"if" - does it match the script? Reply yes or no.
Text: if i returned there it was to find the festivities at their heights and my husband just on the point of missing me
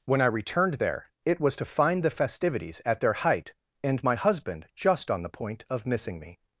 no